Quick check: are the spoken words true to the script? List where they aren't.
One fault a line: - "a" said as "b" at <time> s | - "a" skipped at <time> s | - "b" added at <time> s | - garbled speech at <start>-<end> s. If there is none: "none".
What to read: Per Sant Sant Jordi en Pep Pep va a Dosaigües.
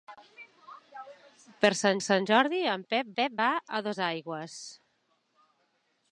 none